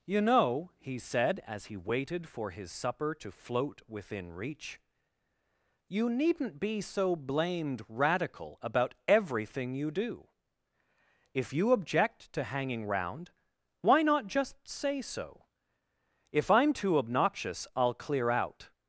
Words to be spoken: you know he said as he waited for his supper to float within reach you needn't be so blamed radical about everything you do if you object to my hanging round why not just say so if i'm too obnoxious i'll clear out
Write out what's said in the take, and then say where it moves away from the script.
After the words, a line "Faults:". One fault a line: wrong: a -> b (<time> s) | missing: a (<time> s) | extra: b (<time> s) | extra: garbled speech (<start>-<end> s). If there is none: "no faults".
you know he said as he waited for his supper to float within reach you needn't be so blamed radical about everything you do if you object to hanging round why not just say so if i'm too obnoxious i'll clear out
Faults:
missing: my (12.4 s)